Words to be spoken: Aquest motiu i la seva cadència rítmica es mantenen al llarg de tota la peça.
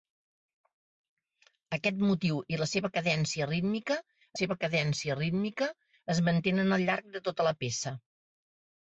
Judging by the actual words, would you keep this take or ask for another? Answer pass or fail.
fail